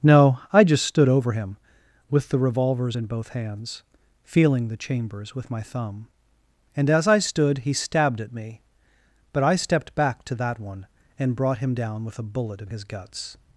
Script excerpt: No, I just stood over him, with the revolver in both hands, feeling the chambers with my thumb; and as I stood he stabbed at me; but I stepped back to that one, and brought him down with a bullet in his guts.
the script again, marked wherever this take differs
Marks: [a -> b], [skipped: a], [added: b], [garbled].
No, I just stood over him, with the [revolver -> revolvers] in both hands, feeling the chambers with my thumb; and as I stood he stabbed at me; but I stepped back to that one, and brought him down with a bullet in his guts.